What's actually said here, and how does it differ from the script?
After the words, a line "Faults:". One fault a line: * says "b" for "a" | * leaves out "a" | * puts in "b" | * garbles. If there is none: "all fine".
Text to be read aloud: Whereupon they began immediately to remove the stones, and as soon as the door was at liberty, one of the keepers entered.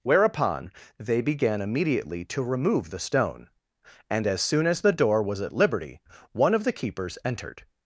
Whereupon they began immediately to remove the stone, and as soon as the door was at liberty, one of the keepers entered.
Faults:
* says "stone" for "stones"